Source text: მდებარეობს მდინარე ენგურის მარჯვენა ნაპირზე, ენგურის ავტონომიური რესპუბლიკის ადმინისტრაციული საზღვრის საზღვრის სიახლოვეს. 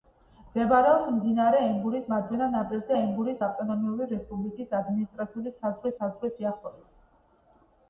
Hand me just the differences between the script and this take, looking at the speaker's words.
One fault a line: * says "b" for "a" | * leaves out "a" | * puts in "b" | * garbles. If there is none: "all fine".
all fine